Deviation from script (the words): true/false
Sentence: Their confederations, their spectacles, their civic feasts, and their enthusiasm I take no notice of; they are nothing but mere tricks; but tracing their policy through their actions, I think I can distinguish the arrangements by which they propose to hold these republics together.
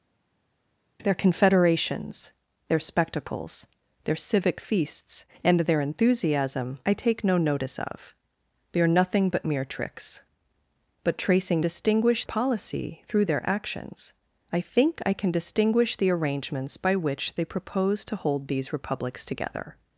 true